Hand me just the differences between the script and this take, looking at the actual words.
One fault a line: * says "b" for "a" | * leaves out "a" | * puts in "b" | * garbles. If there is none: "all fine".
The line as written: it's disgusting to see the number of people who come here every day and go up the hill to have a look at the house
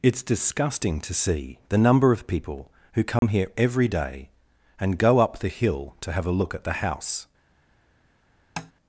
all fine